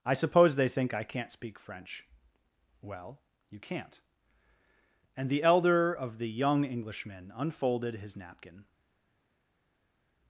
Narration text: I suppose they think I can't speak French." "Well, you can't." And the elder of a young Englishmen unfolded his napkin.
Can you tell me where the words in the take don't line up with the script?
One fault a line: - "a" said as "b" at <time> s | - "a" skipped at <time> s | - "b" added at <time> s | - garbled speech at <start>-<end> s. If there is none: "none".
- "a" said as "the" at 6.2 s